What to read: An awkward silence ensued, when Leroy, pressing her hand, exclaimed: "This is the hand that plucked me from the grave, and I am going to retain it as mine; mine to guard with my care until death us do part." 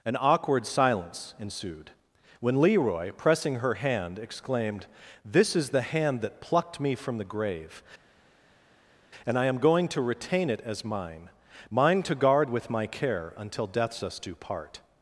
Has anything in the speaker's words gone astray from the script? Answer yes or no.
yes